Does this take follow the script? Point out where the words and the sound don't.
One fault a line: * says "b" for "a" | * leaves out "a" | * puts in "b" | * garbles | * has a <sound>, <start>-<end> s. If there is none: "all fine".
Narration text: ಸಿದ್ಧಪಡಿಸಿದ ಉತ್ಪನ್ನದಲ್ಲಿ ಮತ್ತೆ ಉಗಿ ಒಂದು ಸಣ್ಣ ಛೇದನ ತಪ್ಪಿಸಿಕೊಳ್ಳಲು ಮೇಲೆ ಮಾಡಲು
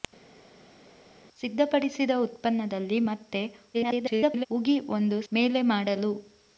* garbles
* leaves out "ಸಣ್ಣ ಛೇದನ ತಪ್ಪಿಸಿಕೊಳ್ಳಲು"